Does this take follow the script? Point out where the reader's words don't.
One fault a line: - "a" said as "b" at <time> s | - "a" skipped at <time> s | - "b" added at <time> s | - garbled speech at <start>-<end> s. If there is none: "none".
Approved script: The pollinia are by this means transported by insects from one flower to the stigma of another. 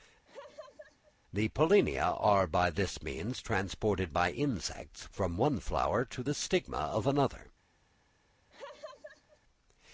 none